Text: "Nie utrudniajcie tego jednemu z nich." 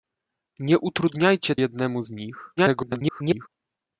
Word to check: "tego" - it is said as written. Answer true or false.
false